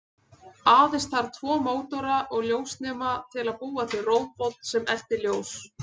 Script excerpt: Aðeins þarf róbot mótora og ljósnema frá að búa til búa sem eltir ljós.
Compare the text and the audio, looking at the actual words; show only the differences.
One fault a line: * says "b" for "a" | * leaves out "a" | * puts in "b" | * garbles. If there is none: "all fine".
* says "tvo" for "róbot"
* says "til" for "frá"
* says "róbot" for "búa"